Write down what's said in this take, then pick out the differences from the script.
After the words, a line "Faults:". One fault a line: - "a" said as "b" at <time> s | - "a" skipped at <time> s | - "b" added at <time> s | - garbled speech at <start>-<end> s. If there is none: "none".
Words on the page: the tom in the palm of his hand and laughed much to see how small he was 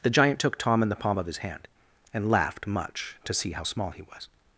the giant took tom in the palm of his hand and laughed much to see how small he was
Faults:
- "giant took" added at 0.1 s